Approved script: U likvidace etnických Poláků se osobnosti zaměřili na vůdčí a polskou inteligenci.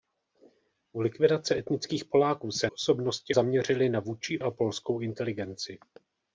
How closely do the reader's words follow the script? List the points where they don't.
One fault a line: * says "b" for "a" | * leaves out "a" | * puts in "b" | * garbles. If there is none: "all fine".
all fine